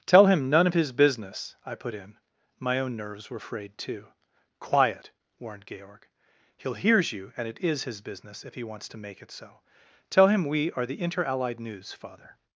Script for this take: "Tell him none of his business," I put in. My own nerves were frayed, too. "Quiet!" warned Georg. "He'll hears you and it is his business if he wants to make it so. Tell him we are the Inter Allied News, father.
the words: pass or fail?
pass